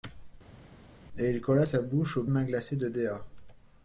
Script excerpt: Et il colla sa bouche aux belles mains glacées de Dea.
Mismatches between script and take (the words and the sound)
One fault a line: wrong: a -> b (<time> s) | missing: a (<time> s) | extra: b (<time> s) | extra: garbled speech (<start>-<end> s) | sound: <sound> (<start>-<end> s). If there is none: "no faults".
missing: belles (2.2 s)